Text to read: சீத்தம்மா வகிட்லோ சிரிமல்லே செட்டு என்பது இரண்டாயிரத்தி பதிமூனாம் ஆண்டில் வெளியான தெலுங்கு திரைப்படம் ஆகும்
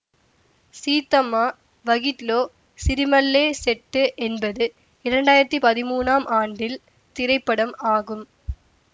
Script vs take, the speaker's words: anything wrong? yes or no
yes